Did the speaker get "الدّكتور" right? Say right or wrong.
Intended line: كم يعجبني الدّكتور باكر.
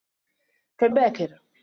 wrong